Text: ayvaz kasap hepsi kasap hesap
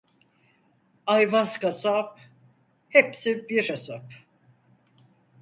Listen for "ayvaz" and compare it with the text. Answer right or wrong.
right